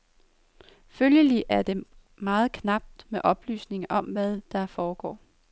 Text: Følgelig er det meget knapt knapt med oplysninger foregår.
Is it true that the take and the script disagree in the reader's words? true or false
true